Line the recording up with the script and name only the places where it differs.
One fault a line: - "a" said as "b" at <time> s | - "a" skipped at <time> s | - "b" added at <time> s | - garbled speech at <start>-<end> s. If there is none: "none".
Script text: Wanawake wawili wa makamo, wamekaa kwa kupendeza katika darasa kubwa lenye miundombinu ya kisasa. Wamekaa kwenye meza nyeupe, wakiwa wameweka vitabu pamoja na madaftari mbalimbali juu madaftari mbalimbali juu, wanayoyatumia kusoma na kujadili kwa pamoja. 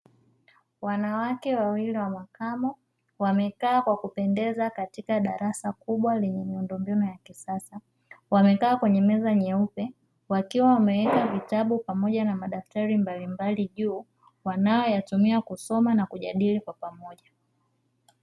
- "madaftari mbalimbali juu" skipped at 14.1 s